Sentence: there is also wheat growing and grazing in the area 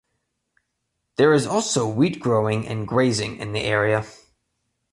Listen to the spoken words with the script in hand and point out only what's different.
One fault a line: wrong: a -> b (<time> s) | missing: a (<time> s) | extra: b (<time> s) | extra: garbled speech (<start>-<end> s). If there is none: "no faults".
no faults